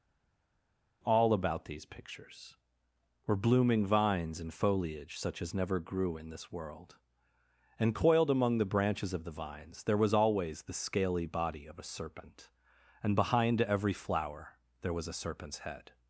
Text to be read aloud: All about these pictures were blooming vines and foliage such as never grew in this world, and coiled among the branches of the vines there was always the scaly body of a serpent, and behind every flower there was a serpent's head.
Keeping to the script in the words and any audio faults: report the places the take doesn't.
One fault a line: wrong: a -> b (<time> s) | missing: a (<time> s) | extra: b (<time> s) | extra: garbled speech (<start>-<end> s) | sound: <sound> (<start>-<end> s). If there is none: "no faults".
no faults